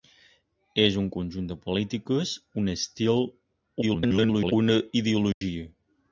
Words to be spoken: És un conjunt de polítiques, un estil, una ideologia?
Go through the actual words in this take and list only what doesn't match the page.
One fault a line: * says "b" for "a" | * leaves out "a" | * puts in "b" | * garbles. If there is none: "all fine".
* garbles